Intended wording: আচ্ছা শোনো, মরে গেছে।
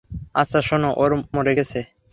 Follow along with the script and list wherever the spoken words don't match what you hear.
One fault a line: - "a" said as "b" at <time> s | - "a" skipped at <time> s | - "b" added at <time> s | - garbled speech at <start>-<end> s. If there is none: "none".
none